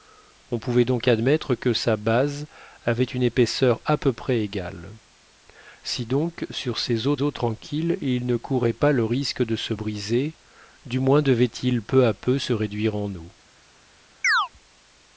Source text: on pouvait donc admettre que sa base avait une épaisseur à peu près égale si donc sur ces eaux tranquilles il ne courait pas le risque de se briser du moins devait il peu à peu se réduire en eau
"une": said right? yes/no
yes